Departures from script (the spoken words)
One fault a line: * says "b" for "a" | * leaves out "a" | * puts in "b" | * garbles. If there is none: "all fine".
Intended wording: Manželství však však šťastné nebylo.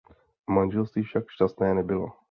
* leaves out "však"